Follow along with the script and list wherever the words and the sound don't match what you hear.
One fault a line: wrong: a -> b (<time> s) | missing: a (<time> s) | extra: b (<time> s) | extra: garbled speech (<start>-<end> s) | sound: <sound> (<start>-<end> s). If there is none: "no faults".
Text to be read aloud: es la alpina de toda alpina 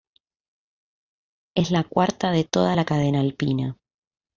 wrong: alpina -> cuarta (1.8 s)
extra: la cadena (2.7 s)